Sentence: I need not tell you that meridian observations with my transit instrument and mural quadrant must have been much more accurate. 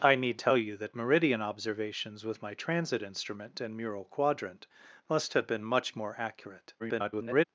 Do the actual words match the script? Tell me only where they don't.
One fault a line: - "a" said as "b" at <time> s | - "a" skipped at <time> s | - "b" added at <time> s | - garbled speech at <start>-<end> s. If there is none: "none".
- "not" skipped at 0.4 s
- garbled speech at 6.8-7.4 s